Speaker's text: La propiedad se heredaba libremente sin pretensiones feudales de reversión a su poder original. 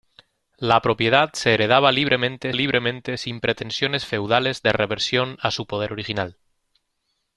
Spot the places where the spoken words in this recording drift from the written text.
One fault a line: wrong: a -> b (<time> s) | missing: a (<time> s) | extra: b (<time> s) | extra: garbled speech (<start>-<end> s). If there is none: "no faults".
extra: libremente (2.5 s)